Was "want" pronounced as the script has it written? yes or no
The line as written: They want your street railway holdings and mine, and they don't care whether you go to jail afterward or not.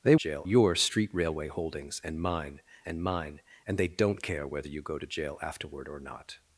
no